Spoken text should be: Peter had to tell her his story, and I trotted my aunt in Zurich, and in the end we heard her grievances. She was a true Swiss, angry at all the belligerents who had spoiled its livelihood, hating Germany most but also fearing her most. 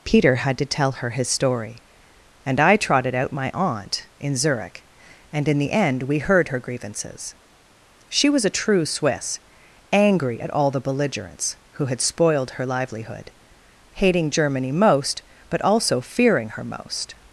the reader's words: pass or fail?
fail